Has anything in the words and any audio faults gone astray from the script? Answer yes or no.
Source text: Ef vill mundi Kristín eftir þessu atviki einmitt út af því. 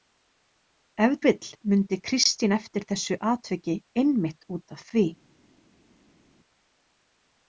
no